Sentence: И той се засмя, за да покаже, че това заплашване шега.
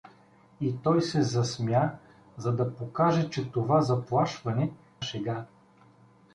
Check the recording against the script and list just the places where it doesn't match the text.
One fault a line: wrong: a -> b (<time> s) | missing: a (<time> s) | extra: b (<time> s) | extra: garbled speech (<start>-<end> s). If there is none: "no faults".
no faults